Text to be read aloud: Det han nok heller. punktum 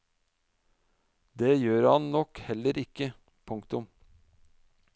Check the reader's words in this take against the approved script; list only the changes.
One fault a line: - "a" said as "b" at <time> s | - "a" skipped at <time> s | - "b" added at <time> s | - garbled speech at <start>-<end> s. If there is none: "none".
- "gjør" added at 1.6 s
- "ikke" added at 2.8 s